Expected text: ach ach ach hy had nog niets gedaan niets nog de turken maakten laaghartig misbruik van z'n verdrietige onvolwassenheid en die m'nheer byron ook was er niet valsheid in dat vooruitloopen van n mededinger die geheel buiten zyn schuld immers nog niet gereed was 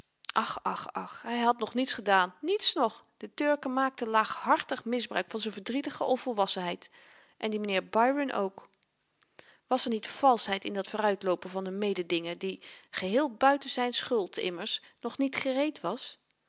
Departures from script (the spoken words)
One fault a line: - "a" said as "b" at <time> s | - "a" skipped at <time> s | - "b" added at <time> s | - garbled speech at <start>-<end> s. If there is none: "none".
none